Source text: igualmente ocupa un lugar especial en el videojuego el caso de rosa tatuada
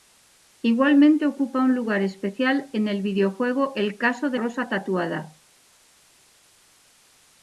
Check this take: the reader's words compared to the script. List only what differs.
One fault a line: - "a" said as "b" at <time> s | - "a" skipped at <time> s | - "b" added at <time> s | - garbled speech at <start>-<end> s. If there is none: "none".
none